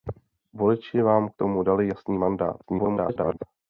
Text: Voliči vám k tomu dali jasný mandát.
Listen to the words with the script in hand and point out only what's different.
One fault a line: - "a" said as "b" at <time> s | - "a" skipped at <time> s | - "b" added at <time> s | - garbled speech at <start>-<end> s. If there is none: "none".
- garbled speech at 2.6-3.4 s